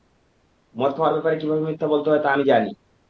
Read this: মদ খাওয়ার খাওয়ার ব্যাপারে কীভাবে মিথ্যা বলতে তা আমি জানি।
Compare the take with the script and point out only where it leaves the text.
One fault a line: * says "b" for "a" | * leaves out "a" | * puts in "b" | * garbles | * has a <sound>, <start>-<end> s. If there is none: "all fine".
* leaves out "খাওয়ার"
* puts in "হয়"